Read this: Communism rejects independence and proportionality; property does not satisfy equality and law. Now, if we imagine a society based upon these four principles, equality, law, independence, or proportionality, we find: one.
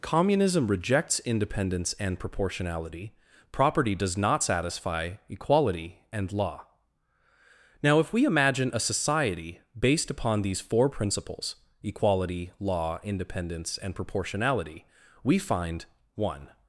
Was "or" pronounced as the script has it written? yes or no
no